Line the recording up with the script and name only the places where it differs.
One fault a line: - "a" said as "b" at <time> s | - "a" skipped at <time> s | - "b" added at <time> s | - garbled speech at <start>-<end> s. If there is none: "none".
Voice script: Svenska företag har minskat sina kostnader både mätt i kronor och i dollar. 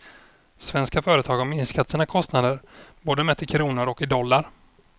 none